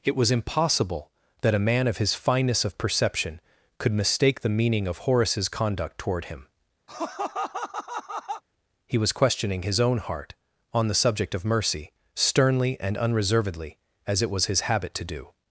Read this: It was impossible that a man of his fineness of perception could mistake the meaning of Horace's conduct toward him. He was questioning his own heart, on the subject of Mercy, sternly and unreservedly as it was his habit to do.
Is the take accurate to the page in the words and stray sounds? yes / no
no